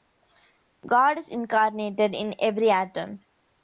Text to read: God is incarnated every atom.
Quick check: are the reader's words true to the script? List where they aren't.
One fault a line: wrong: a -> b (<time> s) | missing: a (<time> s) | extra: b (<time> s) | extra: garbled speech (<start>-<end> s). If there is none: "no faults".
extra: in (2.1 s)